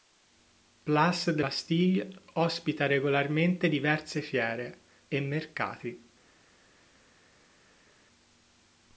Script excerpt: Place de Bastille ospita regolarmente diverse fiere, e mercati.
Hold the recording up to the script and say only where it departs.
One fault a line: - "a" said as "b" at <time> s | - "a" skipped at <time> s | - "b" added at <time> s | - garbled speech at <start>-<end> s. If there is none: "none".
none